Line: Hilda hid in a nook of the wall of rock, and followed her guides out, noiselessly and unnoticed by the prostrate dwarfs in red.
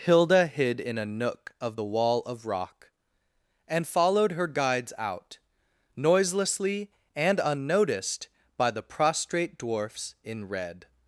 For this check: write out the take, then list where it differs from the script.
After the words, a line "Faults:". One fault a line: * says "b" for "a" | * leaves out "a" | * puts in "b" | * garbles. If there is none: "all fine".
Hilda hid in a nook of the wall of rock, and followed her guides out, noiselessly and unnoticed by the prostrate dwarfs in red.
Faults:
all fine